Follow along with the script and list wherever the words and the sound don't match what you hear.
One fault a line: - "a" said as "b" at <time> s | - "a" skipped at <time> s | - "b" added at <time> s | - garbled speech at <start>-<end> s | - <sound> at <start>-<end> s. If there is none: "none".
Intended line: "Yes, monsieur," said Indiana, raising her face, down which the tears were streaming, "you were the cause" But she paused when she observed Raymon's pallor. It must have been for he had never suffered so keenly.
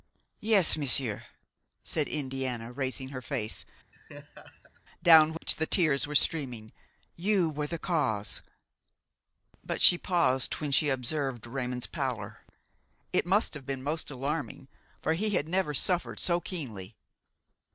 - laugh at 3.9-4.8 s
- dropout at 5.4-5.4 s
- "most alarming" added at 13.8 s